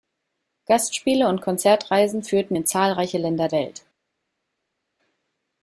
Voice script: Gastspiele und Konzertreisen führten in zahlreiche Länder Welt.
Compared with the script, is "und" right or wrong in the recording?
right